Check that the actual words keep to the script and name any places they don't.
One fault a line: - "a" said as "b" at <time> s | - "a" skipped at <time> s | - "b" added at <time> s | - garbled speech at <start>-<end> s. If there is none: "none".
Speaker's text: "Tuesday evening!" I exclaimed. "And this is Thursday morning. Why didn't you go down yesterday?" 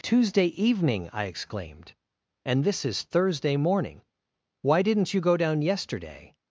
none